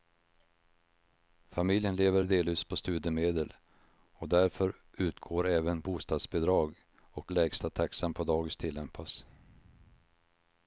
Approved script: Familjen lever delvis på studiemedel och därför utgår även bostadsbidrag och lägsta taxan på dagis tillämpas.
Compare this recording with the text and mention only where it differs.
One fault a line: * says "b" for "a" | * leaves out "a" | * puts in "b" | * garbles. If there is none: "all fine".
all fine